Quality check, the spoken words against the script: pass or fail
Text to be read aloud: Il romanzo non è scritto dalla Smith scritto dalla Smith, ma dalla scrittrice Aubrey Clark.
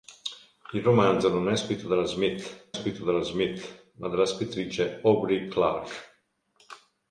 pass